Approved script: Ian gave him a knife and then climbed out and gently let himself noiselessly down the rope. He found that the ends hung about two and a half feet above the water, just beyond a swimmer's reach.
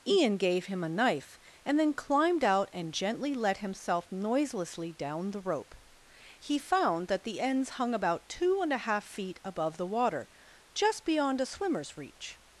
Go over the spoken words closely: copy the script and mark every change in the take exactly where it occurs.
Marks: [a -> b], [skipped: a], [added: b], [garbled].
Ian gave him a knife and then climbed out and gently let himself noiselessly down the rope. He found that the ends hung about two and a half feet above the water, just beyond a swimmer's reach.